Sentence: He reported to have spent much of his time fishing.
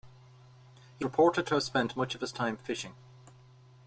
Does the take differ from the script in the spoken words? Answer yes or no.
no